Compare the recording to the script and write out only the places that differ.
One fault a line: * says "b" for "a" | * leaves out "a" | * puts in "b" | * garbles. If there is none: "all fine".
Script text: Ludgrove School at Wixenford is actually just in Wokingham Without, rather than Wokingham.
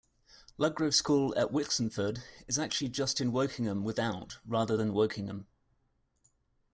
all fine